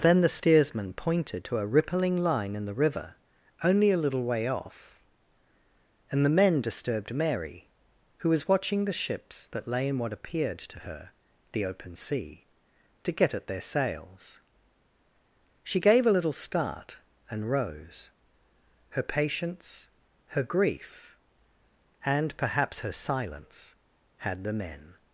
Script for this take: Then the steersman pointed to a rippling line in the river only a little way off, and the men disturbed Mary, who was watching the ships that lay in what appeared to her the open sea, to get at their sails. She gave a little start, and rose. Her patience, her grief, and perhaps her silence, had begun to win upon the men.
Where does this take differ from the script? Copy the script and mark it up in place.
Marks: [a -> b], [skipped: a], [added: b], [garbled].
Then the steersman pointed to a rippling line in the river only a little way off, and the men disturbed Mary, who was watching the ships that lay in what appeared to her the open sea, to get at their sails. She gave a little start, and rose. Her patience, her grief, and perhaps her silence, had [skipped: begun to win upon] the men.